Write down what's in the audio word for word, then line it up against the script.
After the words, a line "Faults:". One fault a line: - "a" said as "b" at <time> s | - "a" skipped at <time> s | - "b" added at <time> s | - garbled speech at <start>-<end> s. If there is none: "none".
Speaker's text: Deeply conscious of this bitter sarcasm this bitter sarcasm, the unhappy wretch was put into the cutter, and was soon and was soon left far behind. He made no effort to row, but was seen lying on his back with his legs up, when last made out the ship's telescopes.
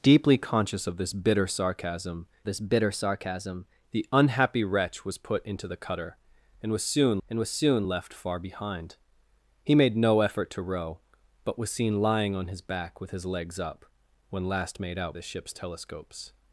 Deeply conscious of this bitter sarcasm this bitter sarcasm, the unhappy wretch was put into the cutter, and was soon and was soon left far behind. He made no effort to row, but was seen lying on his back with his legs up, when last made out the ship's telescopes.
Faults:
none